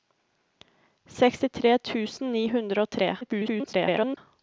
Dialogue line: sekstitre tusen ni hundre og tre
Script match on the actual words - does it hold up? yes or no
no